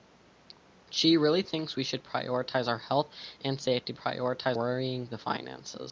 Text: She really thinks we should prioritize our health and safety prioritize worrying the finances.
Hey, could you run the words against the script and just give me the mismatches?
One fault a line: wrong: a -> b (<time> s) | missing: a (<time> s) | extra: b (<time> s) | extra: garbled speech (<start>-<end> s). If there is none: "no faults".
no faults